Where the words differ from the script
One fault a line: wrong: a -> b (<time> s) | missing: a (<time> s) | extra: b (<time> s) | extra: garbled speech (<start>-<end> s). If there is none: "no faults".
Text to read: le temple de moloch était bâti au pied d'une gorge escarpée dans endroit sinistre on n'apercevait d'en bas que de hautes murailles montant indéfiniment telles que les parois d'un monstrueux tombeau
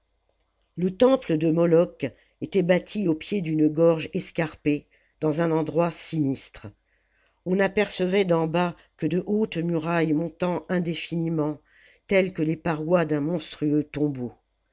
extra: un (5.4 s)